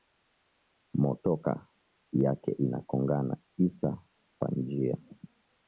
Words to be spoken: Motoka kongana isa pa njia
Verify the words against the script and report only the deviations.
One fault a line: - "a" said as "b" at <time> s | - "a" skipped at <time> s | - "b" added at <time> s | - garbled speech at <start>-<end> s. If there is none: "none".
- "yake ina" added at 2.1 s